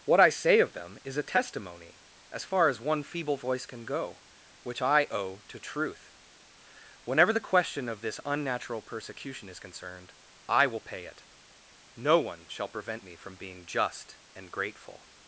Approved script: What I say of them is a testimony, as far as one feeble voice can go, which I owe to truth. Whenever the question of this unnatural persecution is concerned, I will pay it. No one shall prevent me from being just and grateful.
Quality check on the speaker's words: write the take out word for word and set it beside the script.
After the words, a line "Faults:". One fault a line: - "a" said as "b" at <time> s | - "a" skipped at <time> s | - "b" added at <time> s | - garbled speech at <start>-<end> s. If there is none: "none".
What I say of them is a testimony, as far as one feeble voice can go, which I owe to truth. Whenever the question of this unnatural persecution is concerned, I will pay it. No one shall prevent me from being just and grateful.
Faults:
none